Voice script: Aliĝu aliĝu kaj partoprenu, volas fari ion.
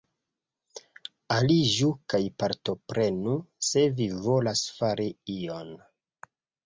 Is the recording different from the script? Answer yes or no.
yes